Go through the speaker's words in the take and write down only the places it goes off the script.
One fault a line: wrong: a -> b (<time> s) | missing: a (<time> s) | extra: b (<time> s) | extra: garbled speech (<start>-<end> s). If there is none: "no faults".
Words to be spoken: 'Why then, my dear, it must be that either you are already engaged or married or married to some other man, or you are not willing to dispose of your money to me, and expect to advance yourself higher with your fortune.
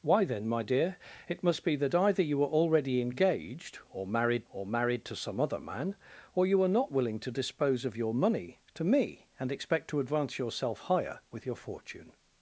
no faults